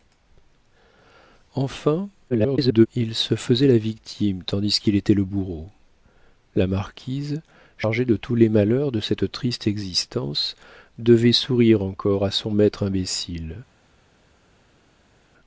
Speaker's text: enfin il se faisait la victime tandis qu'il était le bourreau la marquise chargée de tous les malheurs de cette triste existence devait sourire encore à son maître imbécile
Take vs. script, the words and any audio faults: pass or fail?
fail